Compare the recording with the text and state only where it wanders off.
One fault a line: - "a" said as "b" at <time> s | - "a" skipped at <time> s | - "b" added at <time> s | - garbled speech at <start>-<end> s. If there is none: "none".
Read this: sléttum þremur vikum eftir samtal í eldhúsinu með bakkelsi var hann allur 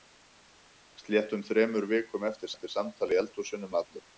- "eftir" added at 2.5 s
- "með bakkelsi var" skipped at 3.7 s